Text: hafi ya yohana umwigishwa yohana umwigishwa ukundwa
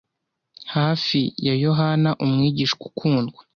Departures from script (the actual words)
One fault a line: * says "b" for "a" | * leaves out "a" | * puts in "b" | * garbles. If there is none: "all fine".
* leaves out "yohana umwigishwa"